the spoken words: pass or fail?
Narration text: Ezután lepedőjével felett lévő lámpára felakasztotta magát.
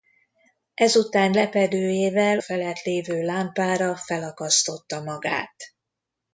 pass